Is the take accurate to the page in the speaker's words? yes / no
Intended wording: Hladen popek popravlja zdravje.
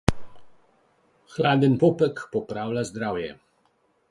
yes